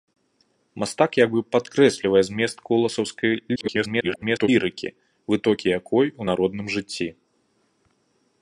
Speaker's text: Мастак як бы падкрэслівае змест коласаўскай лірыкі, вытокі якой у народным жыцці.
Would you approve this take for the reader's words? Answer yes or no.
no